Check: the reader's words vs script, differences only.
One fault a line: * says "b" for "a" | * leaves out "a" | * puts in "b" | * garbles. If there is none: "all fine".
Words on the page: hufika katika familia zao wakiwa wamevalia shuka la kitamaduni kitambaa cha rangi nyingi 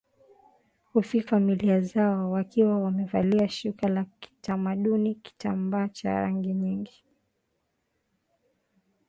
* leaves out "katika"